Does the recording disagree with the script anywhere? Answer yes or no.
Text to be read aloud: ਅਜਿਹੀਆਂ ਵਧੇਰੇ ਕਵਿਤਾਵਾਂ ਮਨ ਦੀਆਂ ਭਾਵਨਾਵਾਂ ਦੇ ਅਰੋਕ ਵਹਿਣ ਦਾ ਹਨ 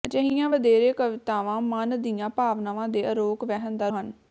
no